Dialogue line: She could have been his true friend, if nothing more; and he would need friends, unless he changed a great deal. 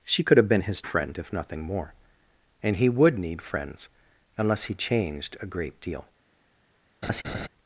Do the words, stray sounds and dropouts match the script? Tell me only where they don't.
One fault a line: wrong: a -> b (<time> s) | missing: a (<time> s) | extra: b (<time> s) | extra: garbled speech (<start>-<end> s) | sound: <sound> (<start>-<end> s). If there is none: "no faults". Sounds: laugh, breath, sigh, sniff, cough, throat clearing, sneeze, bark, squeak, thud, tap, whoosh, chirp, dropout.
missing: true (0.8 s)
sound: laugh (7.0-7.5 s)